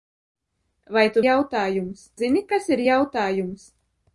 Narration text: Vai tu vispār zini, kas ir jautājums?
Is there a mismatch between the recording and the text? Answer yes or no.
yes